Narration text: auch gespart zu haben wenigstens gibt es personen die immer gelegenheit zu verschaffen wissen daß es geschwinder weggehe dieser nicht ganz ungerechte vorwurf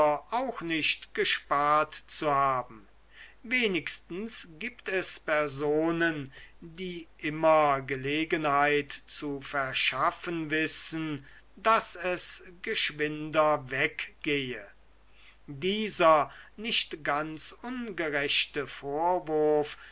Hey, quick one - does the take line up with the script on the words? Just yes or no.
no